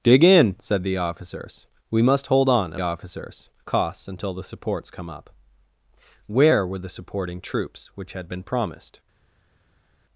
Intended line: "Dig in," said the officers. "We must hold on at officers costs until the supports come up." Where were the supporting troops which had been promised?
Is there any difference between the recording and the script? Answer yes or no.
no